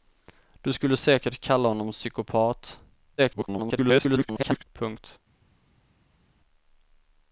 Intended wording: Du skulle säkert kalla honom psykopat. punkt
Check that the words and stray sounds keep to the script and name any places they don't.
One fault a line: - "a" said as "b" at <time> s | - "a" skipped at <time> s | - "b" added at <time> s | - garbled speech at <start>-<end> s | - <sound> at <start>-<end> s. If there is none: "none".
- garbled speech at 3.2-4.6 s